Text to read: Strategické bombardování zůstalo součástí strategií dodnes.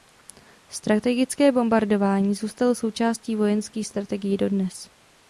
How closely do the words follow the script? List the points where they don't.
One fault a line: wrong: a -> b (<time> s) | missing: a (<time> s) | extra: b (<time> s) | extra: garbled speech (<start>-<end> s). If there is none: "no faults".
extra: vojenských (3.4 s)